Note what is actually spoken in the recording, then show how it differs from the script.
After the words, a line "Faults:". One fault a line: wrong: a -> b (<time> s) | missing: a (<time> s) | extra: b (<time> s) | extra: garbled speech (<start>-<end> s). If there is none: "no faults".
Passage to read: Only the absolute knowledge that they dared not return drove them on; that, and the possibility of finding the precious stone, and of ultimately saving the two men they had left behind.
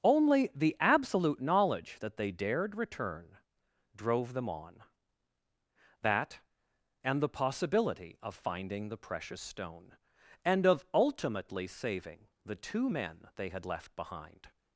Only the absolute knowledge that they dared return drove them on; that, and the possibility of finding the precious stone, and of ultimately saving the two men they had left behind.
Faults:
missing: not (2.7 s)